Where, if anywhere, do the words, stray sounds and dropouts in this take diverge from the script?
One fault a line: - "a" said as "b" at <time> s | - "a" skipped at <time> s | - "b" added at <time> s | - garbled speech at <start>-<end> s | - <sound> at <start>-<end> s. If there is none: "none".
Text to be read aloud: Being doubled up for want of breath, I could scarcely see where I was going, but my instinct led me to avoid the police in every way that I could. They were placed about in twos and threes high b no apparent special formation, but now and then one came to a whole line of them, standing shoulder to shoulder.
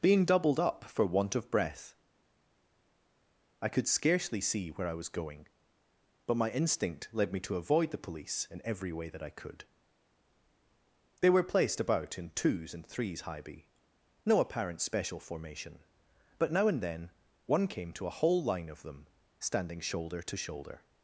none